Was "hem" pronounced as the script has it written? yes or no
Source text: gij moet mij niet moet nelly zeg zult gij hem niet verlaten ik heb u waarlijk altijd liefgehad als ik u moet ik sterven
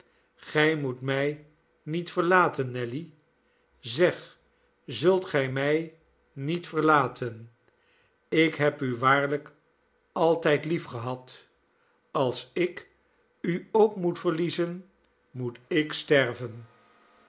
no